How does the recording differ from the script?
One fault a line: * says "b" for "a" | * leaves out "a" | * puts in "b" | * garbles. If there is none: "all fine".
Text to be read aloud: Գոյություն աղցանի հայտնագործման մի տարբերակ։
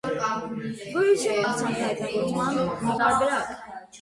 all fine